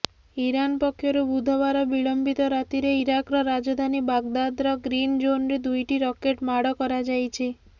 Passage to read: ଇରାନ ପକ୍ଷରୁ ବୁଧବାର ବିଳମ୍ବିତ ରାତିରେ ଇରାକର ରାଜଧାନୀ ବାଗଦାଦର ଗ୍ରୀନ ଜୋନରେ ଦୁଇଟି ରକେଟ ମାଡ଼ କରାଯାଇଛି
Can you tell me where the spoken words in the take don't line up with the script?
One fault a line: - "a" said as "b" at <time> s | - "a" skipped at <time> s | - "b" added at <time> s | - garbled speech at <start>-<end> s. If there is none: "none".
none